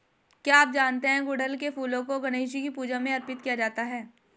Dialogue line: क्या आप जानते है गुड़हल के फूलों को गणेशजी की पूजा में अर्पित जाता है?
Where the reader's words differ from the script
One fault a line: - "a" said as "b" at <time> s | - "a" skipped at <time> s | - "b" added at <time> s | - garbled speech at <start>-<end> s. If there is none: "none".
- "किया" added at 3.4 s